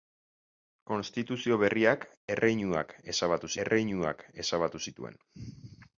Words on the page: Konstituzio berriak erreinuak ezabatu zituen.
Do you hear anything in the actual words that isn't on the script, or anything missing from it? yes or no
yes